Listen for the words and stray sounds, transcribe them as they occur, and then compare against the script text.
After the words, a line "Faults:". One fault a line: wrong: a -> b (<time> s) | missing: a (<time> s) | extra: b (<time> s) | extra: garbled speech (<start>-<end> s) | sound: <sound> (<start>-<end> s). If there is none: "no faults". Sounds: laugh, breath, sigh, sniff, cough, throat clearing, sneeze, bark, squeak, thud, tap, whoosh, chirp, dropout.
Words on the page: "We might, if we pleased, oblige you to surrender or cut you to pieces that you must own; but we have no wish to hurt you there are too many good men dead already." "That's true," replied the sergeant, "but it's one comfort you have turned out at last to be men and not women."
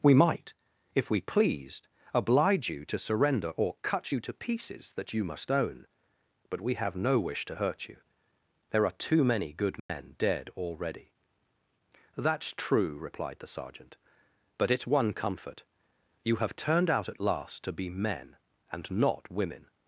"We might, if we pleased, oblige you to surrender or cut you to pieces that you must own; but we have no wish to hurt you there are too many good men dead already." "That's true," replied the sergeant, "but it's one comfort you have turned out at last to be men and not women."
Faults:
sound: dropout (9.8-9.9 s)